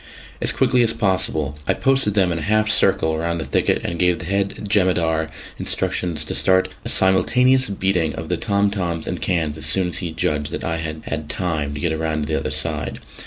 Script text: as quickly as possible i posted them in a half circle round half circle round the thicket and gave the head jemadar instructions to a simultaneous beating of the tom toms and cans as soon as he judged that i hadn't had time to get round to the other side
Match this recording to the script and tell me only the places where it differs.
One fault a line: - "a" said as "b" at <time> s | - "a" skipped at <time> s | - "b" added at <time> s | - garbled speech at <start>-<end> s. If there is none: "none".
- "half circle round" skipped at 3.4 s
- "start" added at 6.3 s
- "hadn't" said as "had" at 10.8 s